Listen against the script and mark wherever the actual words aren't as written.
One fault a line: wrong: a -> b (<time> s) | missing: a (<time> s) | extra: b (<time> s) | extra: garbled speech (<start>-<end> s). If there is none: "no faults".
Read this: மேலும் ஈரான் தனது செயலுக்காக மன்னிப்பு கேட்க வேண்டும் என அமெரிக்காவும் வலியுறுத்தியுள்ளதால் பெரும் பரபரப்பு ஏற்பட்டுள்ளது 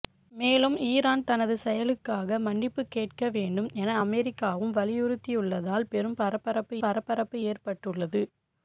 extra: பரபரப்பு (6.8 s)